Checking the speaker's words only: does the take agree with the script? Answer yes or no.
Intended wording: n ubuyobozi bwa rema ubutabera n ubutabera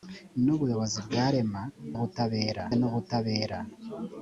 yes